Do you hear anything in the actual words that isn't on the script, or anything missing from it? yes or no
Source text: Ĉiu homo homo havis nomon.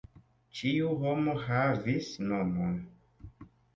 yes